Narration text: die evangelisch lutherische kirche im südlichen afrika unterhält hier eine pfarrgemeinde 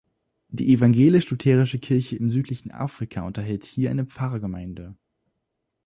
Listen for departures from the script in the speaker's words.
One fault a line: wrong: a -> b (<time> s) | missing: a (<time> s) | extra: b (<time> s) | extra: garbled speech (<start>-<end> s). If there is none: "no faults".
no faults